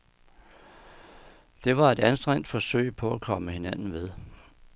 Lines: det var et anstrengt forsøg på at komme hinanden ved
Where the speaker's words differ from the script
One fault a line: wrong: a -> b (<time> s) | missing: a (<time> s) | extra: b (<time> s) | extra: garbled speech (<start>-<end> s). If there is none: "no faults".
no faults